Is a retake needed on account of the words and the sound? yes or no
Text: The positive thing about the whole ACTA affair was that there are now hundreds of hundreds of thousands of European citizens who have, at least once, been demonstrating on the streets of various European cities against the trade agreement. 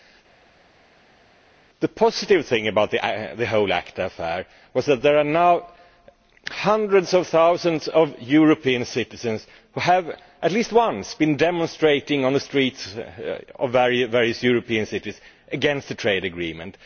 yes